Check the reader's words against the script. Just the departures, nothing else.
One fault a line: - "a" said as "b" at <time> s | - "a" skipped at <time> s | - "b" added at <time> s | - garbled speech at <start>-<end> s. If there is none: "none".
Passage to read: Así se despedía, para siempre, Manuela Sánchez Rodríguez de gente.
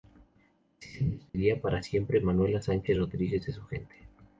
- "su" added at 3.5 s